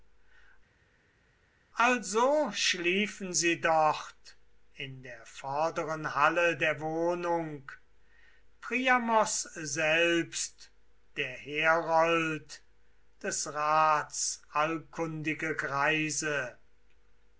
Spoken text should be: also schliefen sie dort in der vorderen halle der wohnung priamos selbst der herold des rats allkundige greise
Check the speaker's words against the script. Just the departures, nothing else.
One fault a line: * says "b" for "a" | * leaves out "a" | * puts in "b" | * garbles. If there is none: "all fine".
all fine